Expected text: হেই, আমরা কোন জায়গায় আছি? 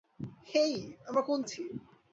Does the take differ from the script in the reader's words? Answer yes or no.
yes